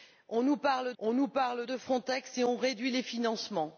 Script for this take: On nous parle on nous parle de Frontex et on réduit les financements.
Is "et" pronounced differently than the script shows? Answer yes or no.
no